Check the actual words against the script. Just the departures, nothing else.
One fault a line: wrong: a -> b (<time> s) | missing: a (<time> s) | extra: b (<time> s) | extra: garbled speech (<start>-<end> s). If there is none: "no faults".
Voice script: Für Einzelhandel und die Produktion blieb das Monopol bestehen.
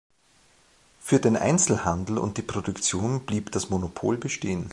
extra: den (1.2 s)